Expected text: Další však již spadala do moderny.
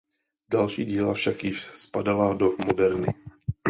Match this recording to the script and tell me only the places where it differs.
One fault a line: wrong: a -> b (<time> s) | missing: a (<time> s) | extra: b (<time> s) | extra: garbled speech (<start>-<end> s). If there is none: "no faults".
extra: díla (0.8 s)